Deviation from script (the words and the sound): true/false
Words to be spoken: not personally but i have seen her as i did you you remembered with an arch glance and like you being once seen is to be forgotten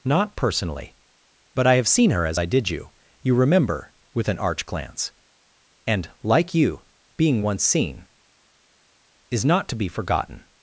true